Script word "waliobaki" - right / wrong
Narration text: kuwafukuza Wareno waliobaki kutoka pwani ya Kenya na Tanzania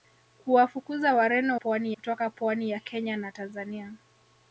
wrong